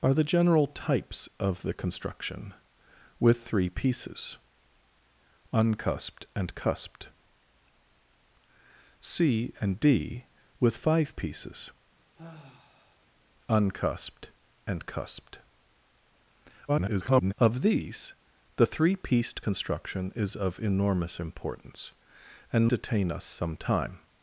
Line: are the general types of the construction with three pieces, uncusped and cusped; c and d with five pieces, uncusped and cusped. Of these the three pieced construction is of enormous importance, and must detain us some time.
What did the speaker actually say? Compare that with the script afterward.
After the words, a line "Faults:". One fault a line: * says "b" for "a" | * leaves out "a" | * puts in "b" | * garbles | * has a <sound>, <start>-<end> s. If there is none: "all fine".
are the general types of the construction with three pieces, uncusped and cusped; c and d with five pieces, uncusped and cusped. [garbled] Of these the three pieced construction is of enormous importance, and detain us some time.
Faults:
* has a sigh, 12.1-13.1 s
* garbles
* leaves out "must"